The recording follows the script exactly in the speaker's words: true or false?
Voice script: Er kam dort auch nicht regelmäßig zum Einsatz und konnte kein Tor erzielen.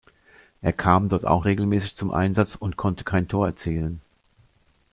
false